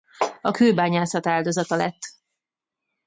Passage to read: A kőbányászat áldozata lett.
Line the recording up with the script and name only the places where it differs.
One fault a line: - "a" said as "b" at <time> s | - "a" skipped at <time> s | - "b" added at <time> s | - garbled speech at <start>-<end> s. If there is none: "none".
none